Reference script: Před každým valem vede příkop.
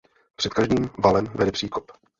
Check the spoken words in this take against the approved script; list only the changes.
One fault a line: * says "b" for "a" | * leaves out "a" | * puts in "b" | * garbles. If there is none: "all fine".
all fine